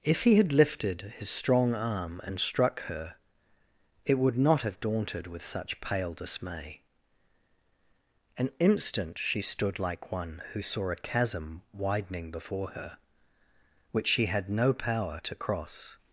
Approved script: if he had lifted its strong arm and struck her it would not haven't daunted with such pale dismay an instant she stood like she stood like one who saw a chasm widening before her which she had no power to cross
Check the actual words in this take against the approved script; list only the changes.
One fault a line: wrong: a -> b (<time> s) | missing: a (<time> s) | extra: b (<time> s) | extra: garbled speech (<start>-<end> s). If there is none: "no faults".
wrong: its -> his (1.2 s)
wrong: haven't -> have (4.6 s)
missing: she stood like (10.1 s)